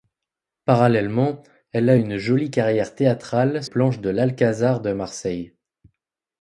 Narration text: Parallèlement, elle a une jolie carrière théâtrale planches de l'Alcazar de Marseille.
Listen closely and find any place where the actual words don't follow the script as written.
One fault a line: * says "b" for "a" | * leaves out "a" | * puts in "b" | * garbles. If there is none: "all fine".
all fine